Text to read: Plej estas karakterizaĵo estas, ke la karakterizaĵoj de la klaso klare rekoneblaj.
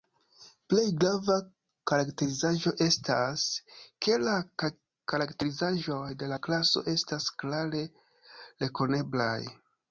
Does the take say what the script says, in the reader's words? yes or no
no